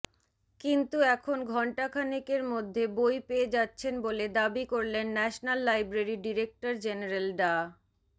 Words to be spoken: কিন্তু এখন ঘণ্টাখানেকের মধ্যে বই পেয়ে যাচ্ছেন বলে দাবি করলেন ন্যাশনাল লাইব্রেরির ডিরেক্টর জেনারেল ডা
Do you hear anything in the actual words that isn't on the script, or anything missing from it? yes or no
no